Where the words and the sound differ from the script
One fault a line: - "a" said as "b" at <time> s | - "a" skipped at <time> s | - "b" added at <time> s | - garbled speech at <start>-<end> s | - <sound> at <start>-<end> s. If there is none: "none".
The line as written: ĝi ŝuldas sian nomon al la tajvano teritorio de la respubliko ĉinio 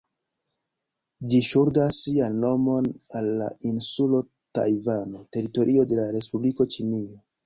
- "insulo" added at 3.7 s